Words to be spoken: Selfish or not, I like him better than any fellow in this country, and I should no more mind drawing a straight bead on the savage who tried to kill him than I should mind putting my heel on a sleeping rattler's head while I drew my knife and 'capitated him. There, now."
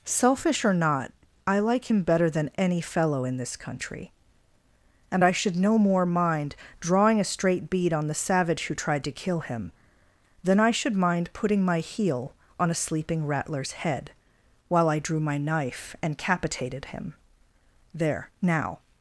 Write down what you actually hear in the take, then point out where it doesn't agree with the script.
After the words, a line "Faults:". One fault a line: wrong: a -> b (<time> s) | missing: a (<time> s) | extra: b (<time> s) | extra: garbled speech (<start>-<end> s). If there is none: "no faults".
Selfish or not, I like him better than any fellow in this country, and I should no more mind drawing a straight bead on the savage who tried to kill him than I should mind putting my heel on a sleeping rattler's head while I drew my knife and 'capitated him. There, now."
Faults:
no faults